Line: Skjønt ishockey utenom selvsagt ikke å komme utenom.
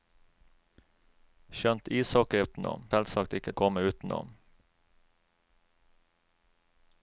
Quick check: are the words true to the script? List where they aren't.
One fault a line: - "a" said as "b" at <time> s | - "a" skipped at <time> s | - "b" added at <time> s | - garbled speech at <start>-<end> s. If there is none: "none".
none